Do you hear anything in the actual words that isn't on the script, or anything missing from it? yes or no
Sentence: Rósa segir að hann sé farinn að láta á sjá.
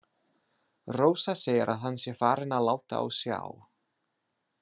no